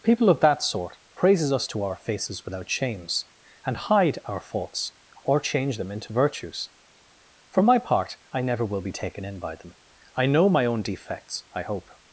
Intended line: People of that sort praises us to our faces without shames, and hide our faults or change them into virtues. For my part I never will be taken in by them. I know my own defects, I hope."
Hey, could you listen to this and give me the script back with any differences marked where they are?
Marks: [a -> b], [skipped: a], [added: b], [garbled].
People of that sort praises us to our faces without shames, and hide our faults or change them into virtues. For my part I never will be taken in by them. I know my own defects, I hope."